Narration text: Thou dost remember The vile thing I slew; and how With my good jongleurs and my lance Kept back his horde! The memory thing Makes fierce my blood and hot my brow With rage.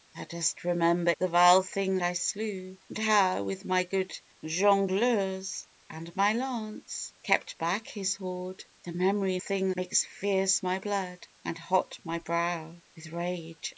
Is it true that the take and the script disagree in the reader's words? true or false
false